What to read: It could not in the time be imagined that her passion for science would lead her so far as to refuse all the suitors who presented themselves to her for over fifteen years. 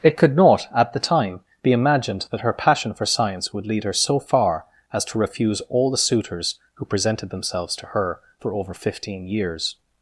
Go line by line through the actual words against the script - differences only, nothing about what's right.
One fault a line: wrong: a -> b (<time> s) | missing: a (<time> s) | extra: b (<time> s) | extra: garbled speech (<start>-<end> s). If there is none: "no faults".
wrong: in -> at (0.8 s)